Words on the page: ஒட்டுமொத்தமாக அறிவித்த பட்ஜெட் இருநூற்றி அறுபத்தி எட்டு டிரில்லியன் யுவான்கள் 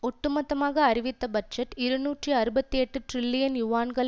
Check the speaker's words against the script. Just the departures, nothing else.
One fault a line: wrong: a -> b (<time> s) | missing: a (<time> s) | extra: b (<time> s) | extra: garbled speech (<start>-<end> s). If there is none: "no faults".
no faults